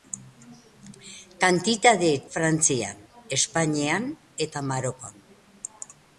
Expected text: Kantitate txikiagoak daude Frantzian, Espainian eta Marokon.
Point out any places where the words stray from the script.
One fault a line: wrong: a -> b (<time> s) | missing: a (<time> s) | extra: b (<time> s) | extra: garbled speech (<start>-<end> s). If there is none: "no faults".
missing: txikiagoak daude (2.1 s)